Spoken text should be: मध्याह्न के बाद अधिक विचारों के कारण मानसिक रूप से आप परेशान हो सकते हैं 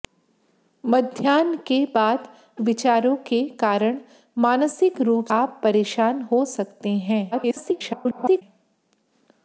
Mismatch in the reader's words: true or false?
true